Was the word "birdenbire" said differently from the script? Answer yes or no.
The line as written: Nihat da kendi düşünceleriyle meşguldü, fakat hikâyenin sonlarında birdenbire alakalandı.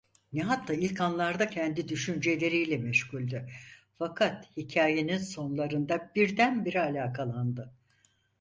no